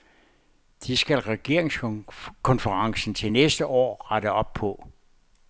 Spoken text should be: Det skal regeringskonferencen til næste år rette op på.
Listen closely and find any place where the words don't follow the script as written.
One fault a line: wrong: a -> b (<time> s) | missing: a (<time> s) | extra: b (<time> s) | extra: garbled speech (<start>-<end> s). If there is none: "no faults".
no faults